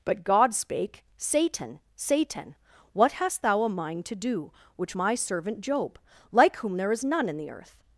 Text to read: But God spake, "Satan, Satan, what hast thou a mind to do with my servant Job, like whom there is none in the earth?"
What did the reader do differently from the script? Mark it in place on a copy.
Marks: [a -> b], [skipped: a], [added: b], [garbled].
But God spake, "Satan, Satan, what hast thou a mind to do [with -> which] my servant Job, like whom there is none in the earth?"